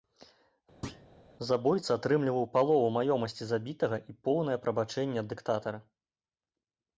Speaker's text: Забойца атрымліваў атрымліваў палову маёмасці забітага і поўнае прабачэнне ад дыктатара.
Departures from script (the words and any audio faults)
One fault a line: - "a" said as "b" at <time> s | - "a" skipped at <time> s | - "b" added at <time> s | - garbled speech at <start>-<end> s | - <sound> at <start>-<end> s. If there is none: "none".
- thud at 0.8-1.1 s
- "атрымліваў" skipped at 2.4 s